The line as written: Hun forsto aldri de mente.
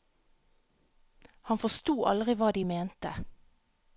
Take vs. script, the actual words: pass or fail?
fail